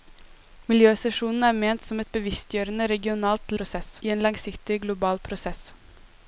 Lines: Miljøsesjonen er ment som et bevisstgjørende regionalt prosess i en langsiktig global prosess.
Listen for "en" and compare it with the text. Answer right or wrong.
right